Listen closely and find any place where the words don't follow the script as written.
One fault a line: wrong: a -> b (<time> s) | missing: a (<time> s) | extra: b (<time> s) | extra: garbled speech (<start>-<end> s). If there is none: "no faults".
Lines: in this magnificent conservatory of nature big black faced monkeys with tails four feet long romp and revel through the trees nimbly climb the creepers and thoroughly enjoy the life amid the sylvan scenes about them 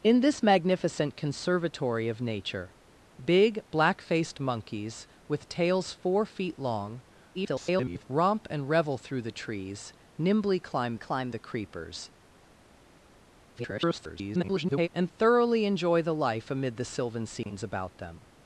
extra: garbled speech (7.3-8.0 s)
extra: climb (11.0 s)
extra: garbled speech (13.5-14.9 s)